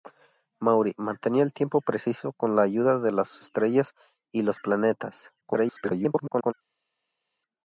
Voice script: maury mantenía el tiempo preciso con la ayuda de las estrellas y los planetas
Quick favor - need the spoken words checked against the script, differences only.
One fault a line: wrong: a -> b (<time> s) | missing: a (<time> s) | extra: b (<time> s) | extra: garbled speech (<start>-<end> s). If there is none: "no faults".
extra: garbled speech (5.4-6.5 s)